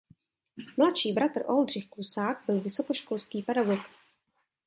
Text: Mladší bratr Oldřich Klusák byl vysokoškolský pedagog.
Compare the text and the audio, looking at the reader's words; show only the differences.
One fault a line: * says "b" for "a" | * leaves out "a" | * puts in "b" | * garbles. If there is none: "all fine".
all fine